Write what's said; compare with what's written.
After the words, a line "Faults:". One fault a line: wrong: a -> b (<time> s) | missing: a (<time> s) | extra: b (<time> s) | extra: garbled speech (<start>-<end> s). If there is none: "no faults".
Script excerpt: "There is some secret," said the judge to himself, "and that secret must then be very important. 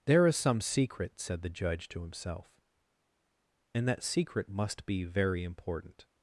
"There is some secret," said the judge to himself, "and that secret must be very important.
Faults:
missing: then (4.9 s)